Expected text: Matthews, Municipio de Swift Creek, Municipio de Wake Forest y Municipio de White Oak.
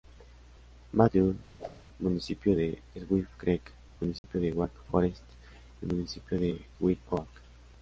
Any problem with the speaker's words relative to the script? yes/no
no